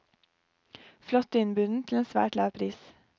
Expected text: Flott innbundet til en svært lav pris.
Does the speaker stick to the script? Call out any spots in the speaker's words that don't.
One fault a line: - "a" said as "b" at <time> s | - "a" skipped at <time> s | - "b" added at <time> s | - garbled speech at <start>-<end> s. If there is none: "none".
none